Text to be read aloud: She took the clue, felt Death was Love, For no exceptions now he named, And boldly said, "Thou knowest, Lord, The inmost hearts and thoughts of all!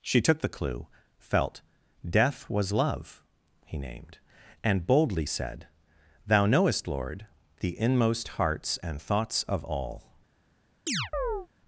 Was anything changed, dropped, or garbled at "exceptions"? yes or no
yes